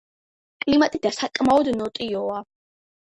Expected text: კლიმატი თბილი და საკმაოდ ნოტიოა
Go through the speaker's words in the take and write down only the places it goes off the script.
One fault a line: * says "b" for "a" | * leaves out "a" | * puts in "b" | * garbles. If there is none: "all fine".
* leaves out "თბილი"